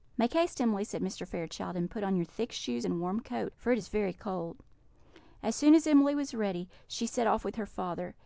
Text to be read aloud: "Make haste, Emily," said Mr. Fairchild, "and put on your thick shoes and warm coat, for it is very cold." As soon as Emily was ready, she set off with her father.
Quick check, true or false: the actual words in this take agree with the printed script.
true